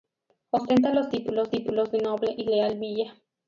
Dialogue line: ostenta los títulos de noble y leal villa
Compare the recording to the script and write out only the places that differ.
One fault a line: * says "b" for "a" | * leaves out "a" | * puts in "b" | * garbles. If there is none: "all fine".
* puts in "títulos"